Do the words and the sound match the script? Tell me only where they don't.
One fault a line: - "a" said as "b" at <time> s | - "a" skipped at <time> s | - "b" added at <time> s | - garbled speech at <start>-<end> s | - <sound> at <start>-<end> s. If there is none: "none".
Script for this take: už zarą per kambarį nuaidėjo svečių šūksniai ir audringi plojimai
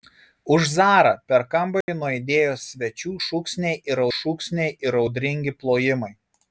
- dropout at 1.8-1.9 s
- "šūksniai ir" added at 4.2 s